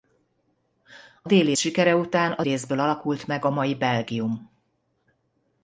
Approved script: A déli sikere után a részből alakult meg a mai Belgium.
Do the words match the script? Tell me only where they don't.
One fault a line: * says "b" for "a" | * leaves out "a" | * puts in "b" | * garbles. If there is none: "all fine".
all fine